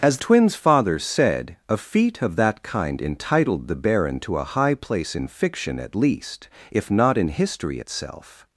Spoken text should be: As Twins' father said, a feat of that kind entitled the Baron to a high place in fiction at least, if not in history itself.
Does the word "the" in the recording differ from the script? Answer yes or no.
no